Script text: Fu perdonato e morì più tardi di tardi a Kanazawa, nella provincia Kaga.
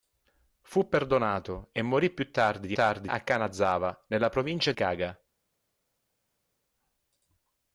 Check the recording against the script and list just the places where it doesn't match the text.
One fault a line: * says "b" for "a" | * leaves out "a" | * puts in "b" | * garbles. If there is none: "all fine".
all fine